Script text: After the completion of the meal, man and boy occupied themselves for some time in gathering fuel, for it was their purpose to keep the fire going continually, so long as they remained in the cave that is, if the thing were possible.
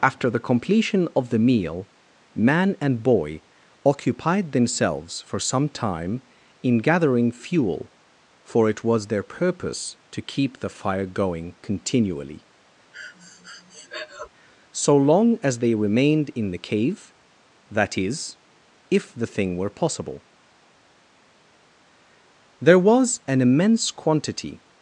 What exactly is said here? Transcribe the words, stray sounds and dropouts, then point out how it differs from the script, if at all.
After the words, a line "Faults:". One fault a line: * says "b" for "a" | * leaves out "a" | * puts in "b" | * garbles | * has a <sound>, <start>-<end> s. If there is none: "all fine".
After the completion of the meal, man and boy occupied themselves for some time in gathering fuel, for it was their purpose to keep the fire going continually, so long as they remained in the cave that is, if the thing were possible. There was an immense quantity
Faults:
* has a breath, 12.9-14.3 s
* puts in "There was an immense quantity"